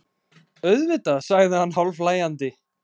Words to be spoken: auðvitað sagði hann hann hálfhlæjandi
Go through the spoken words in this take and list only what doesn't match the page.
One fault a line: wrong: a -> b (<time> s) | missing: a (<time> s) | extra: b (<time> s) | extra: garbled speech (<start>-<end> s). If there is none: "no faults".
missing: hann (1.8 s)